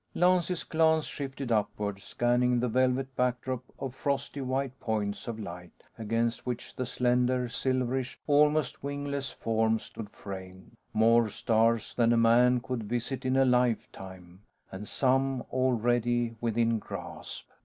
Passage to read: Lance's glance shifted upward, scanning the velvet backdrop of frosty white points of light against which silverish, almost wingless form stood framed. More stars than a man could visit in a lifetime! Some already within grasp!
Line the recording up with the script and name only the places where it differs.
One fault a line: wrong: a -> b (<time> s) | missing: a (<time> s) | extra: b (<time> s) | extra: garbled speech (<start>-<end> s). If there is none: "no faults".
extra: the slender (6.8 s)
extra: And (14.7 s)